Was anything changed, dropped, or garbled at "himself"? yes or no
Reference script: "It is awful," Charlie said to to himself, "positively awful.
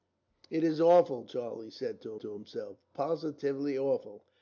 no